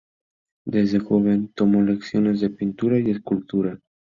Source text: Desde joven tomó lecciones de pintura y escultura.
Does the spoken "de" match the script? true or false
true